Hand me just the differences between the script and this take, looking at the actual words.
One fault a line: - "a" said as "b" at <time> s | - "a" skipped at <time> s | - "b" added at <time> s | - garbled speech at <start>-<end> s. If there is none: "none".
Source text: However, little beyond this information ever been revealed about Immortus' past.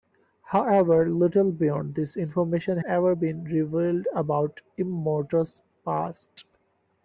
none